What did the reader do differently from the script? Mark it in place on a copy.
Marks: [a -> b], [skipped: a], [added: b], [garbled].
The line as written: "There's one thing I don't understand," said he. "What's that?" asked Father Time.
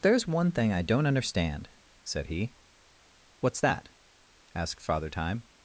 "There's one thing I don't understand," said he. "What's that?" asked Father Time.